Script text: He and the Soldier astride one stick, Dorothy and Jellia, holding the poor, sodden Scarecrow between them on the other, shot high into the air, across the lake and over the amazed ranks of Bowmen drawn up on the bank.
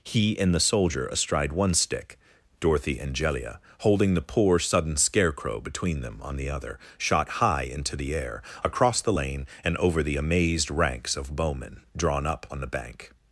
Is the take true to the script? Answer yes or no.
no